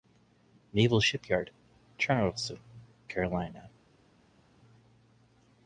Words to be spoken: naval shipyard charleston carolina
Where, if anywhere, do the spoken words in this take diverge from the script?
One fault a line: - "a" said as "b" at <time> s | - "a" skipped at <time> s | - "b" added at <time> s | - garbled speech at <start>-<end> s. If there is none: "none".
none